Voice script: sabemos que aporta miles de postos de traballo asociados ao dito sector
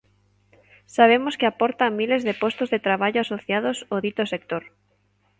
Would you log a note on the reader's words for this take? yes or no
no